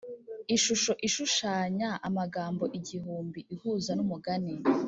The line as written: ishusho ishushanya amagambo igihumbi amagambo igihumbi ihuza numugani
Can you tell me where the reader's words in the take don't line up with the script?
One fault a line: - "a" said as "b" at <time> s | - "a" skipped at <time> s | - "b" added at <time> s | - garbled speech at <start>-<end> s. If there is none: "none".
- "amagambo igihumbi" skipped at 3.4 s